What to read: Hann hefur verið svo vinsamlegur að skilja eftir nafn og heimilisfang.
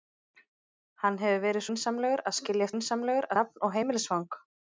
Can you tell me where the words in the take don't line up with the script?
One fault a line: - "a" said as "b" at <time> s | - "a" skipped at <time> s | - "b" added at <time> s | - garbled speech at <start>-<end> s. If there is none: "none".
- "svo" skipped at 1.6 s
- "eftir" said as "vinsamlegur" at 2.7 s